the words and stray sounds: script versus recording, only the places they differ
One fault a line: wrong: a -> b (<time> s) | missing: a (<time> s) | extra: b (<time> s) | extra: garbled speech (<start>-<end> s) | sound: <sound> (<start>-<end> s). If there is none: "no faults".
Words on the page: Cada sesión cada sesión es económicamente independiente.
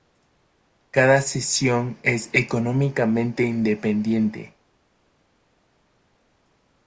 missing: cada sesión (2.0 s)